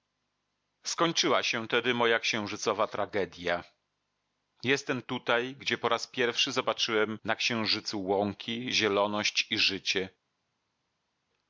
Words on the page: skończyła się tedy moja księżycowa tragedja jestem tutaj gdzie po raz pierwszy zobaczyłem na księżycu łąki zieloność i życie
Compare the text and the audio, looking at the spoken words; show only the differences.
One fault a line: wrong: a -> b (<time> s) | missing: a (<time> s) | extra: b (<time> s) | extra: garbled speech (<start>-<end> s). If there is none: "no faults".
no faults